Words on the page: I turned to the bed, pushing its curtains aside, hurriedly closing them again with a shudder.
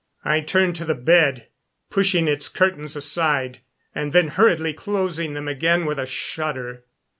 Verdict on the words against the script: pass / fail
fail